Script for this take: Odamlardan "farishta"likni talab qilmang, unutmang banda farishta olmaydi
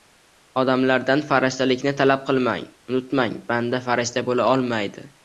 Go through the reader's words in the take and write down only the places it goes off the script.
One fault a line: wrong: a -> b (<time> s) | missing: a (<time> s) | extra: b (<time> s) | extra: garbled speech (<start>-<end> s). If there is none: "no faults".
extra: bo‘la (4.3 s)